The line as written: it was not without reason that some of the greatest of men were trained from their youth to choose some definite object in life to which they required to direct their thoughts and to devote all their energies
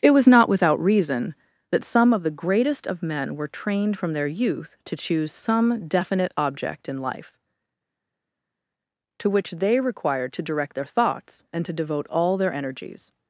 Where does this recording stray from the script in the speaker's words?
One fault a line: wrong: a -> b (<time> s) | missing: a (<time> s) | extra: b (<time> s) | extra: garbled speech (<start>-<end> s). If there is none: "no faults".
no faults